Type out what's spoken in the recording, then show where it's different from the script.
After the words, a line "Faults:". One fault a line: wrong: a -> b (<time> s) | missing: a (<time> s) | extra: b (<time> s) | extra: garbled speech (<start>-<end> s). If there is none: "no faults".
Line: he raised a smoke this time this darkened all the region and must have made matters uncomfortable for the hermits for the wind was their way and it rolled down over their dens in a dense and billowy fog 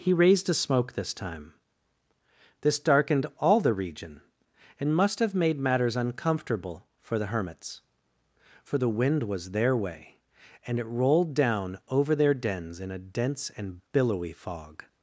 he raised a smoke this time this darkened all the region and must have made matters uncomfortable for the hermits for the wind was their way and it rolled down over their dens in a dense and billowy fog
Faults:
no faults